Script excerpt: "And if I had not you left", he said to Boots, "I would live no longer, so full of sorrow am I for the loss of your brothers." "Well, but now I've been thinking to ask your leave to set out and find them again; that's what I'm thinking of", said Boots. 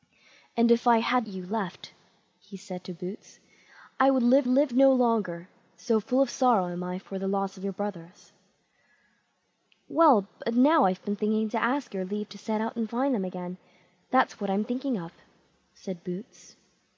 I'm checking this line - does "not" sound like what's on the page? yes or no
no